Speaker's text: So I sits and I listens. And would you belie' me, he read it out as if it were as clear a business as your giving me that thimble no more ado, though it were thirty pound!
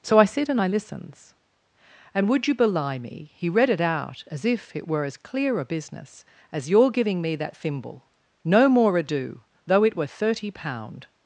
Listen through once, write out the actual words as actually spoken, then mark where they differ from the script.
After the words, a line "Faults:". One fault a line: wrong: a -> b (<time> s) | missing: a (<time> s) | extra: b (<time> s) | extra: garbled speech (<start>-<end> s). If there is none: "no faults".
So I sit and I listens. And would you belie' me, he read it out as if it were as clear a business as your giving me that thimble no more ado, though it were thirty pound!
Faults:
wrong: sits -> sit (0.2 s)